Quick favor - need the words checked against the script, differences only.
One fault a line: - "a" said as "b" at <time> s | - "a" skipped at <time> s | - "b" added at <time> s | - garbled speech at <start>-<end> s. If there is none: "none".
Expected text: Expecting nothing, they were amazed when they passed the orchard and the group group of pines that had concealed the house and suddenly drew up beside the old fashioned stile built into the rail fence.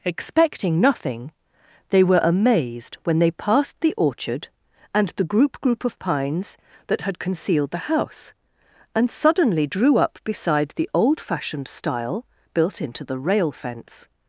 none